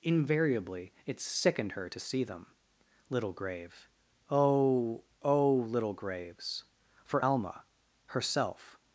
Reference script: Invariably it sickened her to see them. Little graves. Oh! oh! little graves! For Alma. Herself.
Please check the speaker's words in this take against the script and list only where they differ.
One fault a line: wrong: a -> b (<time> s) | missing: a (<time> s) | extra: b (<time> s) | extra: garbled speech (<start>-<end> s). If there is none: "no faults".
wrong: graves -> grave (3.3 s)